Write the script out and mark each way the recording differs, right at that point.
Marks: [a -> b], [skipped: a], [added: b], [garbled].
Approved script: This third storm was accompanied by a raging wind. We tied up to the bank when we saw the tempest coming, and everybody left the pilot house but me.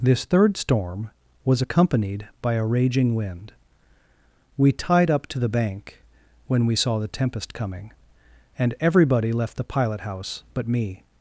This third storm was accompanied by a raging wind. We tied up to the bank when we saw the tempest coming, and everybody left the pilot house but me.